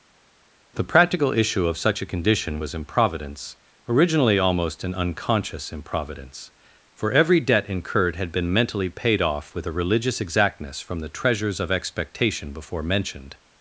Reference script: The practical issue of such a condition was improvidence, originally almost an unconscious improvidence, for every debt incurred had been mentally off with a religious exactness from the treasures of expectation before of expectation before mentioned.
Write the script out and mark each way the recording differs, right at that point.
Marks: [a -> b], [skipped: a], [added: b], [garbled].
The practical issue of such a condition was improvidence, originally almost an unconscious improvidence, for every debt incurred had been mentally [added: paid] off with a religious exactness from the treasures of expectation before [skipped: of expectation before] mentioned.